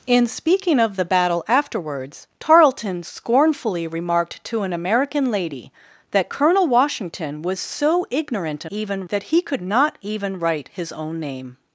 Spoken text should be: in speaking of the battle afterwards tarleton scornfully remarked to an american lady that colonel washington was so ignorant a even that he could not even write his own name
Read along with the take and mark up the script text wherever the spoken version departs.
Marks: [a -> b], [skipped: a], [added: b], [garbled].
in speaking of the battle afterwards tarleton scornfully remarked to an american lady that colonel washington was so ignorant a even that he could not even write his own name